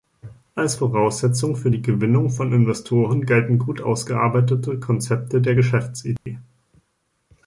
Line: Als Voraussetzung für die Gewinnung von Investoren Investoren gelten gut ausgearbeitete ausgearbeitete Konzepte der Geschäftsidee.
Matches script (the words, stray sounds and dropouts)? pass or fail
fail